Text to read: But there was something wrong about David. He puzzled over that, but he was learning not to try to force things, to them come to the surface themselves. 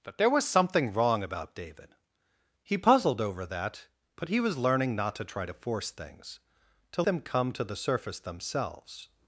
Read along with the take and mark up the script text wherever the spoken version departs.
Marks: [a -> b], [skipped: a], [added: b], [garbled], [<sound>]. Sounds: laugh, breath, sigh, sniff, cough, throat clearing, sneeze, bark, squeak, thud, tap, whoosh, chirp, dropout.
But there was something wrong about David. He puzzled over that, but he was learning not to try to force things, to them come to the surface themselves.